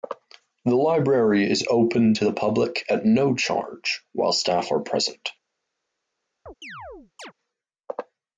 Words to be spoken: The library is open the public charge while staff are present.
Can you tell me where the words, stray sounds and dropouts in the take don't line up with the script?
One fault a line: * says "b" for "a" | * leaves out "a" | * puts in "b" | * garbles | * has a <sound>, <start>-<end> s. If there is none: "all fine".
* puts in "to"
* puts in "at no"
* has a chirp, 6.5-7.3 s